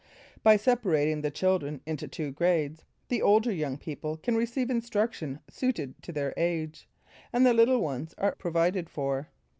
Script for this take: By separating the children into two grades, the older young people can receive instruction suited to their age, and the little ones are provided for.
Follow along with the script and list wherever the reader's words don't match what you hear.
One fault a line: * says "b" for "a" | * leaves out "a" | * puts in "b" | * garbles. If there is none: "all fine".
all fine